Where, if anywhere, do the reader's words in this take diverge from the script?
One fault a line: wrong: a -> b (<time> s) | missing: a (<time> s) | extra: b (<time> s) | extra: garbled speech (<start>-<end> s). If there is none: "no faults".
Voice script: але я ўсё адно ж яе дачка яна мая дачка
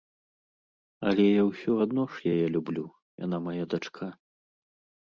wrong: дачка -> люблю (2.6 s)